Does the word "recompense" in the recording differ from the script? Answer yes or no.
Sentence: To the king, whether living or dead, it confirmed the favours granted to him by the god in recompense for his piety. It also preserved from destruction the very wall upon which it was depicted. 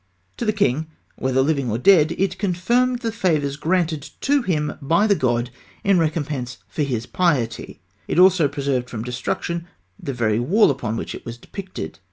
no